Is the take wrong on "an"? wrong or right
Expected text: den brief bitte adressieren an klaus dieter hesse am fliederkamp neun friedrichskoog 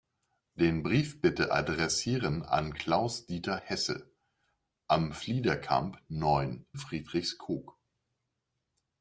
right